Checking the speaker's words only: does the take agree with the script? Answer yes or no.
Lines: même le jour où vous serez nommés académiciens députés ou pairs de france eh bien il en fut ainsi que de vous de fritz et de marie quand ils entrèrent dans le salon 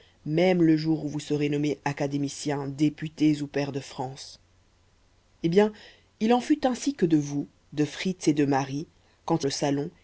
no